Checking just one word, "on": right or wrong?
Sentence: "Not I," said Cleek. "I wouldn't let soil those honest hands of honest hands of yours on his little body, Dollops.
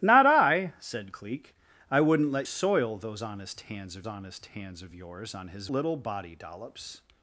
right